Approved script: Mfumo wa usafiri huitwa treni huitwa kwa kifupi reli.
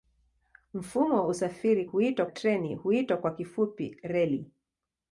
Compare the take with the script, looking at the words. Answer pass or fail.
pass